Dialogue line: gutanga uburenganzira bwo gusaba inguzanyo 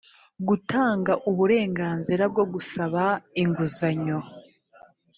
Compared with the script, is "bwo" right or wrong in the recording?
right